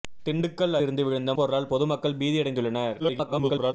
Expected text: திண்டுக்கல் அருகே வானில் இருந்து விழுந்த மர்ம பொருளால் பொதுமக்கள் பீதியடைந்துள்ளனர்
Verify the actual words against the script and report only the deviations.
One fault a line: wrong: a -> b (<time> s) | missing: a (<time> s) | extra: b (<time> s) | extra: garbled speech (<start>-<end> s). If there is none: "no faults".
missing: அருகே வானில் (0.8 s)
missing: மர்ம (1.3 s)
extra: garbled speech (3.0-3.7 s)